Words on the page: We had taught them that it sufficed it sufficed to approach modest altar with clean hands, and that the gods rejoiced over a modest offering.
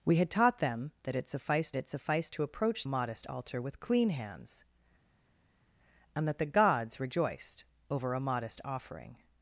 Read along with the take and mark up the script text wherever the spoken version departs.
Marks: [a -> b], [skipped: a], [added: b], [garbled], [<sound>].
We had taught them that it sufficed it sufficed to approach modest altar with clean hands, and that the gods rejoiced over a modest offering.